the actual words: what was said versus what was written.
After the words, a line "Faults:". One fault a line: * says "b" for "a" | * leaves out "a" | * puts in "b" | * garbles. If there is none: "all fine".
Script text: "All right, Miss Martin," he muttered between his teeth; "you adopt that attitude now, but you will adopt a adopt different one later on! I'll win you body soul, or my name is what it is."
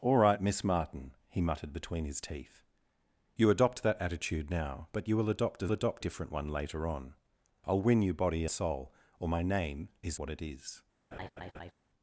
"All right, Miss Martin," he muttered between his teeth; "you adopt that attitude now, but you will adopt a adopt different one later on! I'll win you body soul, or my name is what it is."
Faults:
all fine